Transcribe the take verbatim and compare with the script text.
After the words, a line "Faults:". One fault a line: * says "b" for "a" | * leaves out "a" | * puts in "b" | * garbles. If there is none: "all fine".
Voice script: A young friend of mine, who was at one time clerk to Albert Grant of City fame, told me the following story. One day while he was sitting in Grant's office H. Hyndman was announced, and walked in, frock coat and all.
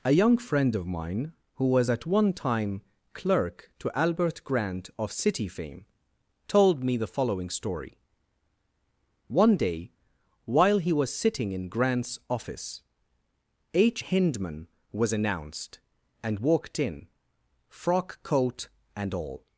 A young friend of mine, who was at one time clerk to Albert Grant of City fame, told me the following story. One day while he was sitting in Grant's office H. Hyndman was announced, and walked in, frock coat and all.
Faults:
all fine